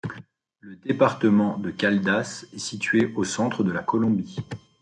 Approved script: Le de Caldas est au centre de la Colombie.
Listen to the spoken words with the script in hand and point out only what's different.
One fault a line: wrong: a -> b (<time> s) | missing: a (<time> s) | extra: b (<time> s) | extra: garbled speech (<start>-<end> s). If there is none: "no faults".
extra: département (0.8 s)
extra: situé (2.6 s)